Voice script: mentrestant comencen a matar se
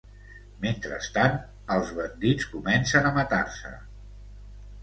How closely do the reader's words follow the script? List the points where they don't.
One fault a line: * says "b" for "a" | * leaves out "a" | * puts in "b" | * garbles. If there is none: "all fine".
* puts in "els bandits"